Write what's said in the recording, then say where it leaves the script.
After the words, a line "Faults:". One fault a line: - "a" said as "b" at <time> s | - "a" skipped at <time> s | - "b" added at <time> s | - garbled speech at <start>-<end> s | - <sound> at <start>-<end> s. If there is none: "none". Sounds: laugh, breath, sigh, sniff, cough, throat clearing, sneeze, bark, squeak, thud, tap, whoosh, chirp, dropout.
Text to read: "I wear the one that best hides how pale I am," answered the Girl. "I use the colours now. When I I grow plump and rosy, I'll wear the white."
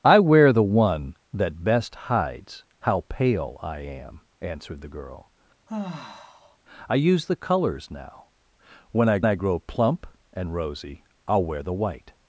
"I wear the one that best hides how pale I am," answered the Girl. "I use the colours now. When I I grow plump and rosy, I'll wear the white."
Faults:
- sigh at 5.7-6.6 s